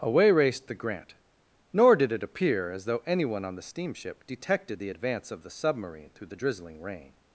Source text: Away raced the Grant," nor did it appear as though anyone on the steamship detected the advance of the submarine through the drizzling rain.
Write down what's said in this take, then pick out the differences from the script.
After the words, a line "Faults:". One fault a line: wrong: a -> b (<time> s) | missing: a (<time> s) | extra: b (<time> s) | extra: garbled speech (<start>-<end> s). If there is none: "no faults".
Away raced the Grant," nor did it appear as though anyone on the steamship detected the advance of the submarine through the drizzling rain.
Faults:
no faults